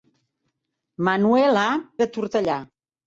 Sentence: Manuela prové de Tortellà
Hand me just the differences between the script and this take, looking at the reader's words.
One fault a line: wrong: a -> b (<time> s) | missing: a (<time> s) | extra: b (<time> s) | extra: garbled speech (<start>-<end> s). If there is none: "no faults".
missing: prové (1.7 s)